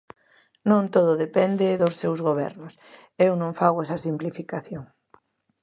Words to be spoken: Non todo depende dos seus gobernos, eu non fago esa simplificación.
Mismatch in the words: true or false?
false